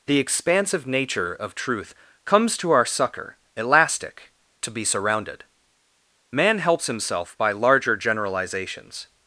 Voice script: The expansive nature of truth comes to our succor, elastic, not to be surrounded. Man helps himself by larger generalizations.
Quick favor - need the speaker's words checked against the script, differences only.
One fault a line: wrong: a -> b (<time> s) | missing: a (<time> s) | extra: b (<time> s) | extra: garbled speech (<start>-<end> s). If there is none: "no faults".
missing: not (4.3 s)